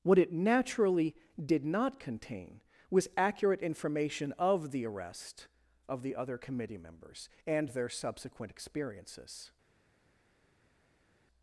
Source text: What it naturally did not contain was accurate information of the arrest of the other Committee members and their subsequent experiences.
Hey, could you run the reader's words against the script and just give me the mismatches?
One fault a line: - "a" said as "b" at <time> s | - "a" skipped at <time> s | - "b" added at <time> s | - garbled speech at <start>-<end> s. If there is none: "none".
none